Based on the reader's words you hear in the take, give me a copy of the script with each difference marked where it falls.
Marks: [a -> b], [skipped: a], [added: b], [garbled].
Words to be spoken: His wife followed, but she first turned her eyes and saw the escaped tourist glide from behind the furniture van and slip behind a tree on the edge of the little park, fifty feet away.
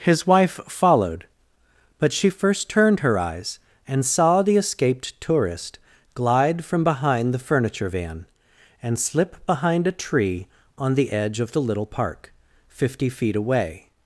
His wife followed, but she first turned her eyes and saw the escaped tourist glide from behind the furniture van and slip behind a tree on the edge of the little park, fifty feet away.